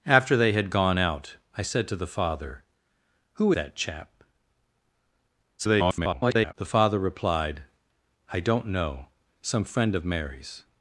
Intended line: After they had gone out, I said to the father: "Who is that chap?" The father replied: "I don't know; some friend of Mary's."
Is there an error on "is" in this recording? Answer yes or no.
yes